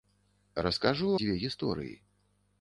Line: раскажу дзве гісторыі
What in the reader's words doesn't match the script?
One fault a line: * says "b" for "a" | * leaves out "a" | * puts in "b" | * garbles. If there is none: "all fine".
all fine